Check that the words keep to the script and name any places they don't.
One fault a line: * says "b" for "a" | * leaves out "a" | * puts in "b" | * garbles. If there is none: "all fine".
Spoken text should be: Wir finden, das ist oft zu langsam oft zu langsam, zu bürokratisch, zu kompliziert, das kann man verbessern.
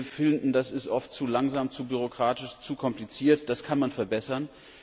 * leaves out "oft zu langsam"